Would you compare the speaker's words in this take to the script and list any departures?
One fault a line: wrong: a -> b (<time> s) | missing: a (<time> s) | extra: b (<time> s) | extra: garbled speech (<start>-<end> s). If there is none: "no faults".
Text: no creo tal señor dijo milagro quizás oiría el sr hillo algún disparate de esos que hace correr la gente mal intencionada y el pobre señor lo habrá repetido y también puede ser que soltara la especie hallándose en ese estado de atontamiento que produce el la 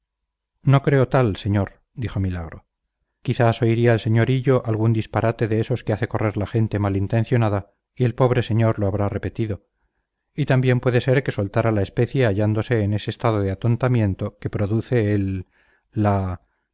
no faults